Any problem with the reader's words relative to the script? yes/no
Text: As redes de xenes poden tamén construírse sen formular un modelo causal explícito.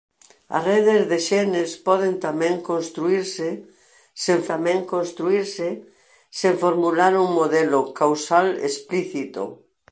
yes